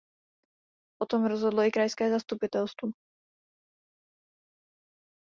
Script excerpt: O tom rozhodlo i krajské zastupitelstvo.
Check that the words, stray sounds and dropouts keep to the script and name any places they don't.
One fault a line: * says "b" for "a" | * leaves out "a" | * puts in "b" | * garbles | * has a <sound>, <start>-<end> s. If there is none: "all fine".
all fine